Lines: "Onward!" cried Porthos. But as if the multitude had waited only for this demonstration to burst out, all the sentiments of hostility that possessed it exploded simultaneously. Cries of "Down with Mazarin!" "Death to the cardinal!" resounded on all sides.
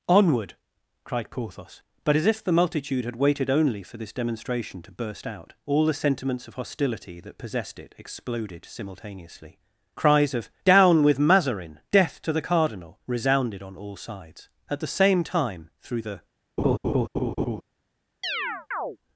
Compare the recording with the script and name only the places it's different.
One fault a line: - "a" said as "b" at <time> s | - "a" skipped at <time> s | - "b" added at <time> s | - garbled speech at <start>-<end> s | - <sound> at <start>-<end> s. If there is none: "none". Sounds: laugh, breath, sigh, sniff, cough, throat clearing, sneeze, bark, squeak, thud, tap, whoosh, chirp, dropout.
- "At the same time through the" added at 14.7 s
- laugh at 16.6-17.6 s
- chirp at 18.2-19.0 s